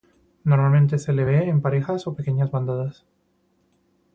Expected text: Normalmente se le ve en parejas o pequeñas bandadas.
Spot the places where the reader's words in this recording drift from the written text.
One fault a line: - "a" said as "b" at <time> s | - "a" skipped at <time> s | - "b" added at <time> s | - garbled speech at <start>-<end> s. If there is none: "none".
none